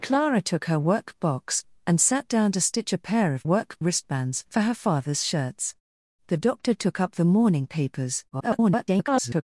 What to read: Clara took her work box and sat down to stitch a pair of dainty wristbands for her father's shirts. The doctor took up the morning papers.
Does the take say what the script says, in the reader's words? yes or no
no